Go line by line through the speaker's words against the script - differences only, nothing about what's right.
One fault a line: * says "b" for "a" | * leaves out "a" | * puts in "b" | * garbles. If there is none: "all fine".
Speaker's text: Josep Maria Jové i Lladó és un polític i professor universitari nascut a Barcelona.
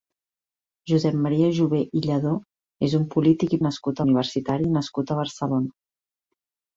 * says "nascut" for "professor"